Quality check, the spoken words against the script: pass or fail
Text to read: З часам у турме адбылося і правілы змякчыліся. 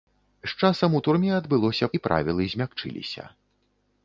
pass